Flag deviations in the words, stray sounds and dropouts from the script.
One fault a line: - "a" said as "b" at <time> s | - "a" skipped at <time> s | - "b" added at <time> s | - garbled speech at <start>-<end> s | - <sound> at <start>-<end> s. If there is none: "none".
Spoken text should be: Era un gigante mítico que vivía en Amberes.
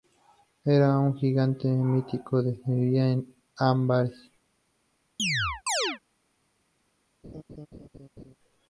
- chirp at 5.2-6.0 s
- laugh at 7.2-8.3 s